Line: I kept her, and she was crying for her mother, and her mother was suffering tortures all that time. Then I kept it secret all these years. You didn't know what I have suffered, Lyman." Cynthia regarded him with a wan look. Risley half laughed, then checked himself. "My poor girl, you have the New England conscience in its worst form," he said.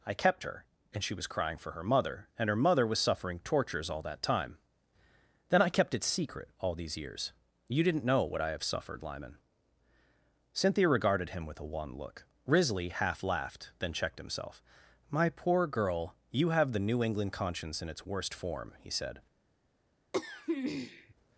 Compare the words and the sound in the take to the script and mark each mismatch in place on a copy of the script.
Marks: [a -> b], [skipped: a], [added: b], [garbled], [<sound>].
I kept her, and she was crying for her mother, and her mother was suffering tortures all that time. Then I kept it secret all these years. You didn't know what I have suffered, Lyman." Cynthia regarded him with a wan look. Risley half laughed, then checked himself. "My poor girl, you have the New England conscience in its worst form," he said. [throat clearing]